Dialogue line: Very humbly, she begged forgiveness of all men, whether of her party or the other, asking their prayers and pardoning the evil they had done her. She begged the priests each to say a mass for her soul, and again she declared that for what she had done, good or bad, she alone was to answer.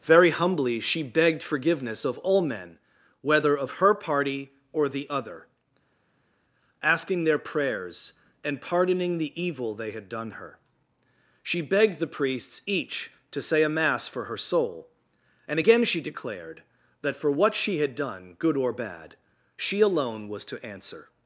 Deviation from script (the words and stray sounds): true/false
false